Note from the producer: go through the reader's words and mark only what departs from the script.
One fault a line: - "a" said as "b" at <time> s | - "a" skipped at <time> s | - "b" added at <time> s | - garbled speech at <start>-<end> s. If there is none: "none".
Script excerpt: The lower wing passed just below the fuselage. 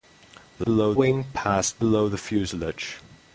- "lower" said as "below" at 0.6 s
- "just" skipped at 1.8 s